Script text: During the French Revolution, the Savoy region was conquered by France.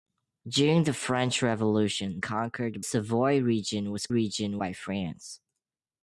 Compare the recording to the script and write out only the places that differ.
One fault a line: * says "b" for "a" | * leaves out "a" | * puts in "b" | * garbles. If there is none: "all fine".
* says "conquered" for "the"
* says "region" for "conquered"